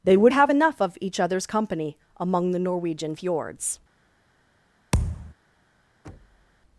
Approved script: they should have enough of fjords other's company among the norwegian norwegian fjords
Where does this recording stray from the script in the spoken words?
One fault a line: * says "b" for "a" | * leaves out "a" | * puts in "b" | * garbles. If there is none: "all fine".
* says "would" for "should"
* says "each" for "fjords"
* leaves out "norwegian"